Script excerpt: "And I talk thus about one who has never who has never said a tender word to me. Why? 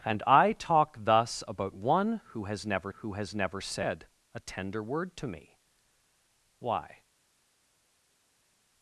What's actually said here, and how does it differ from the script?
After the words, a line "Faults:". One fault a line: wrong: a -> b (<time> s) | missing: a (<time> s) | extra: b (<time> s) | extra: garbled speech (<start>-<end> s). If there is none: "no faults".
"And I talk thus about one who has never who has never said a tender word to me. Why?
Faults:
no faults